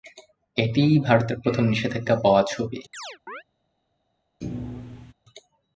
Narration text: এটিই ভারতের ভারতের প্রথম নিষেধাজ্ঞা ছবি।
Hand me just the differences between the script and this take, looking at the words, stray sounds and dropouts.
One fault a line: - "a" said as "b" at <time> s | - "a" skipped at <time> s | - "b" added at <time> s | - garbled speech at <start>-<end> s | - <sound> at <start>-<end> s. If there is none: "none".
- "ভারতের" skipped at 1.4 s
- "পাওয়া" added at 2.2 s
- chirp at 2.9-3.4 s
- thud at 4.4-5.1 s